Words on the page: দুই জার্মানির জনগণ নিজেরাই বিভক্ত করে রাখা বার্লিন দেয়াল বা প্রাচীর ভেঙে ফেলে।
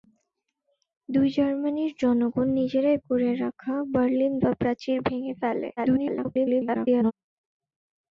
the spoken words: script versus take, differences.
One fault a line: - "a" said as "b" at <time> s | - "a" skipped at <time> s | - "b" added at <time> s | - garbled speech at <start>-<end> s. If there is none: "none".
- "বিভক্ত" skipped at 3.0 s
- "দেয়াল" skipped at 4.3 s
- garbled speech at 5.8-7.1 s